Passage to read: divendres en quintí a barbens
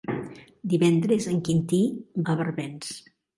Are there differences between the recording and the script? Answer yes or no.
no